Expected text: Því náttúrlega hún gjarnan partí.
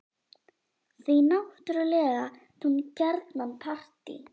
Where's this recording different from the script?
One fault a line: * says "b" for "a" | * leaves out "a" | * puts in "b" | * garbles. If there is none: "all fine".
all fine